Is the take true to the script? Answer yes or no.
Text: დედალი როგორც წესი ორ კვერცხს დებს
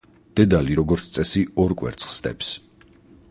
yes